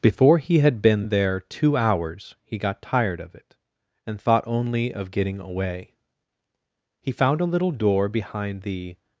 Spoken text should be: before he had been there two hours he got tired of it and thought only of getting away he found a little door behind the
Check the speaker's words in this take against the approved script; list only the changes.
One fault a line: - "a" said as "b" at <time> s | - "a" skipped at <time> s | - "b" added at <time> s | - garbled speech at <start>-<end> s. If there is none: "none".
none